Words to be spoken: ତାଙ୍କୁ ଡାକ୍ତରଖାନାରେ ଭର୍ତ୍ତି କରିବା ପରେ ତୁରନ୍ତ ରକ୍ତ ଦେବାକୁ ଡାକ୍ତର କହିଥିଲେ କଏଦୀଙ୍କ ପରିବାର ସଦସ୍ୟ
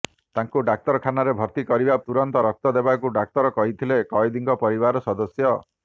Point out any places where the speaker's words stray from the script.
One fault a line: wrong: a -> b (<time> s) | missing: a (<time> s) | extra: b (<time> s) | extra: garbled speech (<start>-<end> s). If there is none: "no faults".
missing: ପରେ (2.0 s)